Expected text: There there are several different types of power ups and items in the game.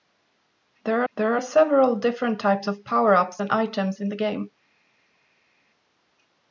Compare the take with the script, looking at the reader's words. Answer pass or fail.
pass